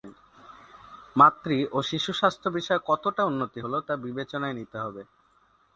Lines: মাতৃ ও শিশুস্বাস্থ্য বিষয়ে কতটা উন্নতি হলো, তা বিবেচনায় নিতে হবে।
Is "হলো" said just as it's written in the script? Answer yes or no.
yes